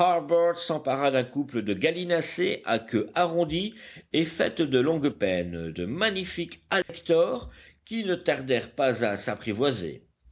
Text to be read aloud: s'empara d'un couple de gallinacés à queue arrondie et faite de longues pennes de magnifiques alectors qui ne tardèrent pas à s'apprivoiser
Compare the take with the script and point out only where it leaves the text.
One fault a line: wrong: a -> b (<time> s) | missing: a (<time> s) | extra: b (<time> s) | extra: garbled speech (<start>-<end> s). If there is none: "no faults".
no faults